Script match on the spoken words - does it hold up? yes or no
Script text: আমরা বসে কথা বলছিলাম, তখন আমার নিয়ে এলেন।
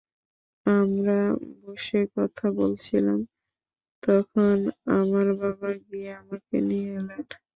no